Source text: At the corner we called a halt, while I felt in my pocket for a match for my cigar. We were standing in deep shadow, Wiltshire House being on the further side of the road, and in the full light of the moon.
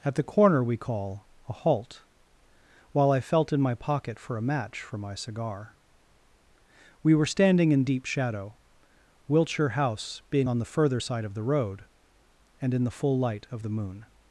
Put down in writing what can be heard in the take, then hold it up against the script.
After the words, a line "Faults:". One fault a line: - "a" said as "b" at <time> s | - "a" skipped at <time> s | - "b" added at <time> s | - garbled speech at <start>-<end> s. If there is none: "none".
At the corner we call a halt, while I felt in my pocket for a match for my cigar. We were standing in deep shadow, Wiltshire House being on the further side of the road, and in the full light of the moon.
Faults:
- "called" said as "call" at 0.8 s